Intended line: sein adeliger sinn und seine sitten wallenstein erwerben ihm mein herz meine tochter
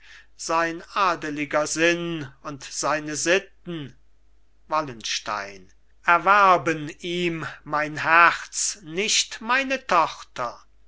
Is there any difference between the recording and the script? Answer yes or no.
yes